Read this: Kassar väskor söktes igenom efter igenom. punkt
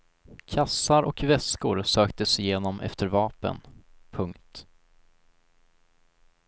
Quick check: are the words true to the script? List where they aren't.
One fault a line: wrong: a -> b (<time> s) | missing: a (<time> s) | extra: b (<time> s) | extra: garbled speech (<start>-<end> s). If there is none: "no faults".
extra: och (1.0 s)
wrong: igenom -> vapen (3.1 s)